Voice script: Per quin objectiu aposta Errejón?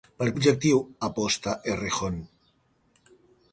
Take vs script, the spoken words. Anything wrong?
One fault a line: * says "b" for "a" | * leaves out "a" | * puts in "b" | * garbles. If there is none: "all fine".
* leaves out "quin"